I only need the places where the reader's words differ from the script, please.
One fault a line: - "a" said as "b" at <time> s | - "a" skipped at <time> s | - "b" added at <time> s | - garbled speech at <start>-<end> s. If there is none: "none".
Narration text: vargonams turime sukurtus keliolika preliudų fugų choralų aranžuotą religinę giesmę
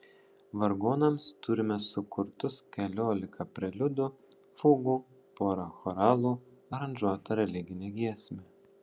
- "porą" added at 5.4 s